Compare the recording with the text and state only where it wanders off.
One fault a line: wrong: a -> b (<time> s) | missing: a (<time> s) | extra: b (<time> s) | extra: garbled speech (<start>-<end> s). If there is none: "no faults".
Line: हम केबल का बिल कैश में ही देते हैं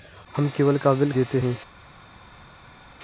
missing: कैश में ही (1.1 s)